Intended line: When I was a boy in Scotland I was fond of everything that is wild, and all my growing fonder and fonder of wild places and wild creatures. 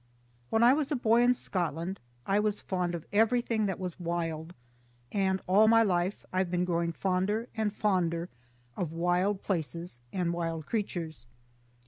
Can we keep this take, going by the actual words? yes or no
no